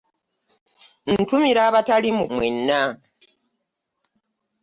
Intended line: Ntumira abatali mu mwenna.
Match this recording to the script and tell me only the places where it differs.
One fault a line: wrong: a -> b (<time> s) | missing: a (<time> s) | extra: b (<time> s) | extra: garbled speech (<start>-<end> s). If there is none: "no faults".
no faults